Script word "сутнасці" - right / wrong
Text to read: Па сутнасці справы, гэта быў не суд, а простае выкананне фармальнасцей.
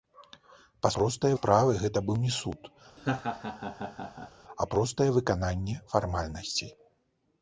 wrong